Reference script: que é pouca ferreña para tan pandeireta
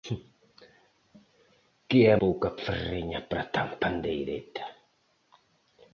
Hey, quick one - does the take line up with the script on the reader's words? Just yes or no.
yes